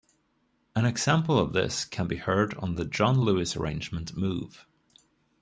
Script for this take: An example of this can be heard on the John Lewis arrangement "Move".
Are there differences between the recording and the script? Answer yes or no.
no